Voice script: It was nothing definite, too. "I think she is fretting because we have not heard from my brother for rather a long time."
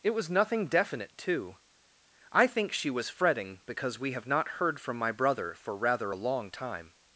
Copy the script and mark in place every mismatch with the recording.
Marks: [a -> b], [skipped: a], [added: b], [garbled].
It was nothing definite, too. "I think she [is -> was] fretting because we have not heard from my brother for rather a long time."